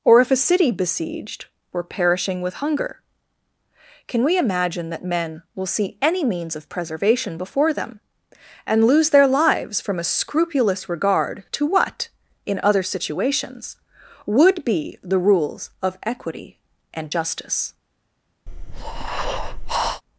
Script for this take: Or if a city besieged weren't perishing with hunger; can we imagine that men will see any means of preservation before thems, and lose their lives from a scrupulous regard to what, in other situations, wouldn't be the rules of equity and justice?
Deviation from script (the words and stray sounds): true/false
true